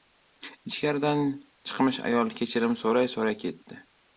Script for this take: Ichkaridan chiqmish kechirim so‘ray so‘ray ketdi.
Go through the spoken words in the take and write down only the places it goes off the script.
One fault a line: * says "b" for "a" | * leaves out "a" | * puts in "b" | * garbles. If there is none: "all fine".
* puts in "ayol"